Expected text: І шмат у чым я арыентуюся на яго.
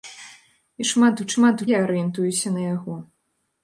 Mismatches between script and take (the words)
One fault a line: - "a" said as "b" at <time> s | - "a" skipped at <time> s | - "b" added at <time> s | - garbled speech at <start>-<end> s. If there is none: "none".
- "чым" said as "шмат" at 1.3 s